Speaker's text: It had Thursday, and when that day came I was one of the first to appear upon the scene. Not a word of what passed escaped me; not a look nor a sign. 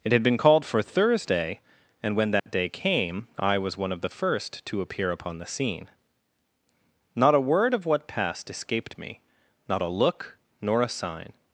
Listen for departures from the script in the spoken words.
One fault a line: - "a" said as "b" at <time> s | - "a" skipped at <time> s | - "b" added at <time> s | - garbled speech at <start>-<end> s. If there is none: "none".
- "been called for" added at 0.2 s